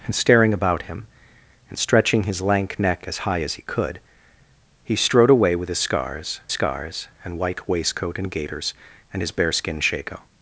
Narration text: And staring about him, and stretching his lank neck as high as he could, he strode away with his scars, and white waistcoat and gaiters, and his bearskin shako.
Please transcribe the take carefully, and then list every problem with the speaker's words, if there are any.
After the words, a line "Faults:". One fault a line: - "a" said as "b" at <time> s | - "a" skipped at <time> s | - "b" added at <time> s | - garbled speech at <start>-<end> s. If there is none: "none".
And staring about him, and stretching his lank neck as high as he could, he strode away with his scars scars, and white waistcoat and gaiters, and his bearskin shako.
Faults:
- "scars" added at 6.5 s